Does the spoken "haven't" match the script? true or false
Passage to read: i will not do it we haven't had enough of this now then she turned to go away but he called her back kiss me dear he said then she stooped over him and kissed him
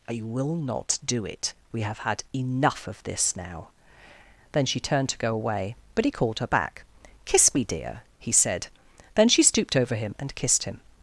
false